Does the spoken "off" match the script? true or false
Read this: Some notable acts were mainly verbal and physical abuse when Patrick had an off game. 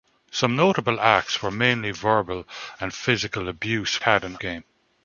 false